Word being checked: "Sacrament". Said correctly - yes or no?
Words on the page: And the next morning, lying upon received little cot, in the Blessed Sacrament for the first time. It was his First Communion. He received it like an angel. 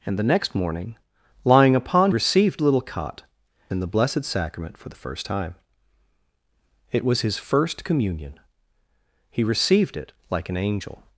yes